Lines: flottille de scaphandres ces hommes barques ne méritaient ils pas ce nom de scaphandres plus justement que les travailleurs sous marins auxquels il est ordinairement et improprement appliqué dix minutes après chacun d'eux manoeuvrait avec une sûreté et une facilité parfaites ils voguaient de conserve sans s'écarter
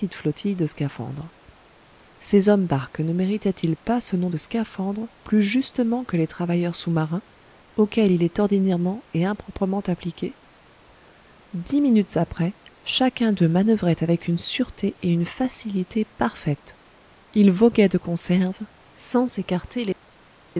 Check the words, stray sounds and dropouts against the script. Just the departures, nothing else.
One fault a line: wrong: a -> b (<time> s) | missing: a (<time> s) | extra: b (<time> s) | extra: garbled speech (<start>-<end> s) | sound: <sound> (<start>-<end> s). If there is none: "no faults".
no faults